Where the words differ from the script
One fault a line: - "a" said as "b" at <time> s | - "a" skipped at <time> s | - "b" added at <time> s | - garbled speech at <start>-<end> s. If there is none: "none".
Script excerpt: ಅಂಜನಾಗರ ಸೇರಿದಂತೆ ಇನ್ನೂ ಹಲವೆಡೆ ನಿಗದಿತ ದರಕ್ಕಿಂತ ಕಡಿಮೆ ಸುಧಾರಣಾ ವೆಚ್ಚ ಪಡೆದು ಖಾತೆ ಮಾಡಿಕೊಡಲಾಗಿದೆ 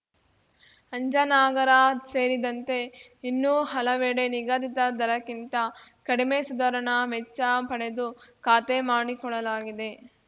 none